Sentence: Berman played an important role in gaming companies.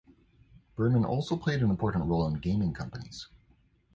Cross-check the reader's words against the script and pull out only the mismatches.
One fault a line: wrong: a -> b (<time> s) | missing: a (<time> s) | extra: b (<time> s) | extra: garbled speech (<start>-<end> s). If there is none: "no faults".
extra: also (1.1 s)